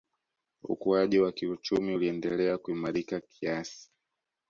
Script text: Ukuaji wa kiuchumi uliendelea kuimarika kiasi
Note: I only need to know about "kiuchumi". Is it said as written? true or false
true